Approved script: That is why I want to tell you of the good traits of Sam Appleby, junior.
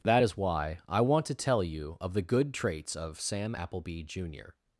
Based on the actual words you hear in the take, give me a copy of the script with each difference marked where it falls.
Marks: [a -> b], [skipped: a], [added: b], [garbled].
That is why I want to tell you of the good traits of Sam Appleby, junior.